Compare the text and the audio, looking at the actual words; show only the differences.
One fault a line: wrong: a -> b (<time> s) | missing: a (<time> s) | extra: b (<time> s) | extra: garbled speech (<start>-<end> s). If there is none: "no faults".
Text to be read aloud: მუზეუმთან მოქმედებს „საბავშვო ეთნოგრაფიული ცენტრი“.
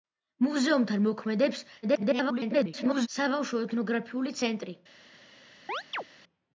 extra: garbled speech (1.8-3.1 s)